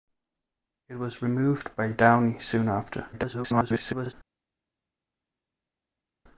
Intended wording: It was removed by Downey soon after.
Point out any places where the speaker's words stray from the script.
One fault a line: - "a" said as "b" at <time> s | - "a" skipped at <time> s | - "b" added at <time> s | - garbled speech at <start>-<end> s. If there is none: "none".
- garbled speech at 3.1-4.1 s